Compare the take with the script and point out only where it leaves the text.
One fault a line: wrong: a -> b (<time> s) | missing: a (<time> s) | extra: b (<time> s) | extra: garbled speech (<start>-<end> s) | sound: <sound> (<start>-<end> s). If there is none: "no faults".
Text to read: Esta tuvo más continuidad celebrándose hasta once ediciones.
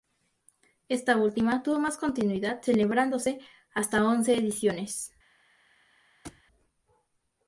extra: última (1.1 s)
sound: thud (6.2-6.4 s)